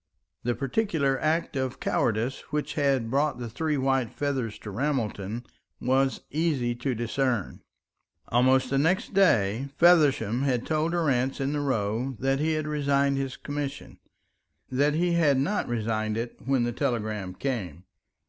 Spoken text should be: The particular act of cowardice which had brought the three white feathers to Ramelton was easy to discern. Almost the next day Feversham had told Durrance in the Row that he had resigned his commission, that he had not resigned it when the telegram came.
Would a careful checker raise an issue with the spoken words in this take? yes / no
no